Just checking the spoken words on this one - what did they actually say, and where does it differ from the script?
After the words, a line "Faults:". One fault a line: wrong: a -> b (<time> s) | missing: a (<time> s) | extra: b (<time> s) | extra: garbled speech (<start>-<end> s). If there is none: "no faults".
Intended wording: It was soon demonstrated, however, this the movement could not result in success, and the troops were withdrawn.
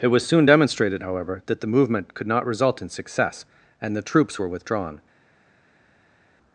It was soon demonstrated, however, that the movement could not result in success, and the troops were withdrawn.
Faults:
wrong: this -> that (1.5 s)